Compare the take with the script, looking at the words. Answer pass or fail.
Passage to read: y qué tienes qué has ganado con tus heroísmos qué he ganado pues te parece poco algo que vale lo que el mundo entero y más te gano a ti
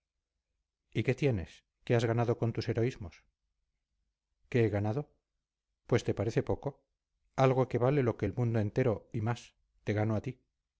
pass